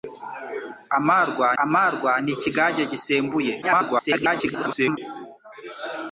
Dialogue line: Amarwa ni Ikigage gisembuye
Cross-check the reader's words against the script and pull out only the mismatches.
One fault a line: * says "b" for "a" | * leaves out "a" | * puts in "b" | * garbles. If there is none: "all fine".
* puts in "amarwa"
* garbles